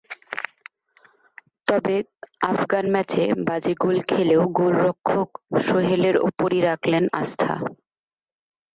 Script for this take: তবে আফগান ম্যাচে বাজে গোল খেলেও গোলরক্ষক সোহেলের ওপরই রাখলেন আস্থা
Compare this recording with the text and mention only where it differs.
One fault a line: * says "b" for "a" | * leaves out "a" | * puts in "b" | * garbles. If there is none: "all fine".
all fine